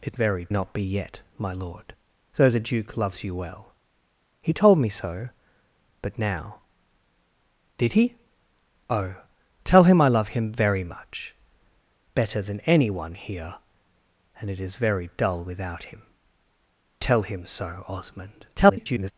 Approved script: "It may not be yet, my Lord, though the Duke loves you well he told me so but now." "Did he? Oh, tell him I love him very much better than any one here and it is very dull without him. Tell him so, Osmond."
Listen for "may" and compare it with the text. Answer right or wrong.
wrong